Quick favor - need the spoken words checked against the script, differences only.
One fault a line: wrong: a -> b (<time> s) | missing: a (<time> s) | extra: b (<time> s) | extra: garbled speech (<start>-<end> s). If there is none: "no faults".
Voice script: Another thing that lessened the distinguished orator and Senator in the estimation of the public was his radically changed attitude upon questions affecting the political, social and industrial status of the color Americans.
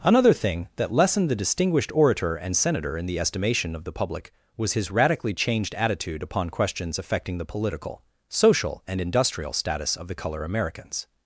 no faults